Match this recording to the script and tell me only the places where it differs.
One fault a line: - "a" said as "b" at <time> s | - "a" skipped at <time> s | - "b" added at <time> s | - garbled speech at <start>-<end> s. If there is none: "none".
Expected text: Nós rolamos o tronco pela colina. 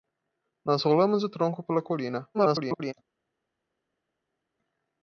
- garbled speech at 2.3-2.9 s